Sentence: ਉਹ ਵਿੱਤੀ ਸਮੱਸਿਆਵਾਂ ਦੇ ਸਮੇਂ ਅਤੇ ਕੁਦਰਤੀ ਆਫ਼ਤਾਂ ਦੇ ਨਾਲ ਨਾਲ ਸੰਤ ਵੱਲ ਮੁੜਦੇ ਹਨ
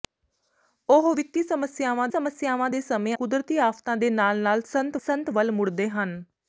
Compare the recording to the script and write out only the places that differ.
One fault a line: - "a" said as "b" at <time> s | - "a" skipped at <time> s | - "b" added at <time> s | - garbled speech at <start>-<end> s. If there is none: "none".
- "ਸਮੱਸਿਆਵਾਂ" added at 2.1 s
- "ਅਤੇ" skipped at 3.2 s
- "ਸੰਤ" added at 5.0 s